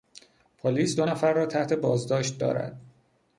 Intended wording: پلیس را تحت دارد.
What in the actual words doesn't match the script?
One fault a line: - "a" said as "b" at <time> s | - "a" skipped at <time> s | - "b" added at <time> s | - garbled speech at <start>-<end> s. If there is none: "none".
- "دو نفر" added at 0.9 s
- "بازداشت" added at 1.7 s